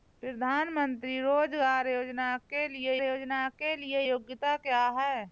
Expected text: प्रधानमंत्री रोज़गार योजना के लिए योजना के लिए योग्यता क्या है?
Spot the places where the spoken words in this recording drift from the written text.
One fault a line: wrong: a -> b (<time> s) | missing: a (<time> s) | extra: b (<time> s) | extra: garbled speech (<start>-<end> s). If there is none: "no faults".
no faults